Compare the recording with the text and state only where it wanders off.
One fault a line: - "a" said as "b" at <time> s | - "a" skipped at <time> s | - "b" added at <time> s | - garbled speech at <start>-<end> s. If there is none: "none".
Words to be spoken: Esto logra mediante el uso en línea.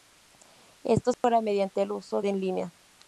none